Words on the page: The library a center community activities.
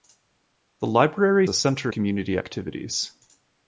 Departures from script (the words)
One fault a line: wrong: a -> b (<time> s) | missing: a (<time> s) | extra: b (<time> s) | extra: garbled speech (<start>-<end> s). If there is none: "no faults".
no faults